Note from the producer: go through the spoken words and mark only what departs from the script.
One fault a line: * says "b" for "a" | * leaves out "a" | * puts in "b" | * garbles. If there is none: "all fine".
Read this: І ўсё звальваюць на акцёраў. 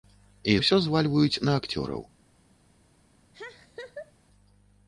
all fine